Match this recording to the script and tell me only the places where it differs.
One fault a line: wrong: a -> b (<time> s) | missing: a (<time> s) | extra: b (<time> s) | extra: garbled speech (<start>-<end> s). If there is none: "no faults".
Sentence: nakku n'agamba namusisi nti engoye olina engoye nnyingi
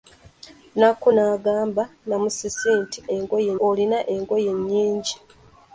no faults